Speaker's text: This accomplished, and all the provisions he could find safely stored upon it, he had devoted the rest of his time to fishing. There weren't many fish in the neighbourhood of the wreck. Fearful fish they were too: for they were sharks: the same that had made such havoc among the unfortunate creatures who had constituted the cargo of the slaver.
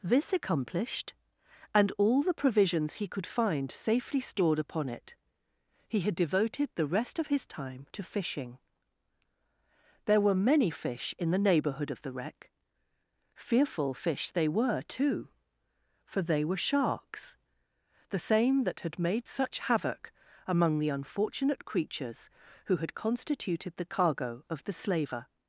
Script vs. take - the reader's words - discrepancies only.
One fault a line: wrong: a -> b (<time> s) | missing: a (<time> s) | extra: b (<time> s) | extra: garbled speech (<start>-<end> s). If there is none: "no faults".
wrong: weren't -> were (10.2 s)